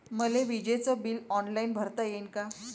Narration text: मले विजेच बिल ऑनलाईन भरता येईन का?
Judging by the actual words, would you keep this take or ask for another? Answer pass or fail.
pass